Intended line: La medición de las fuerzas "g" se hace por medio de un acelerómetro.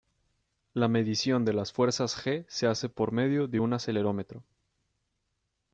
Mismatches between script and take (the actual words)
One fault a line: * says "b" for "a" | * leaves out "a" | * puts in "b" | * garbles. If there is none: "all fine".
all fine